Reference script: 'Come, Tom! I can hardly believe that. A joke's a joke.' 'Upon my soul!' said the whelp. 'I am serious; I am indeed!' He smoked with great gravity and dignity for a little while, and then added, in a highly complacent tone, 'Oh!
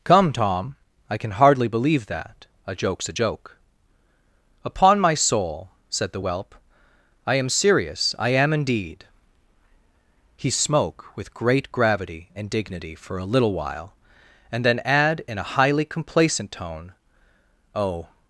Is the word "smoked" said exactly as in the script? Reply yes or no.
no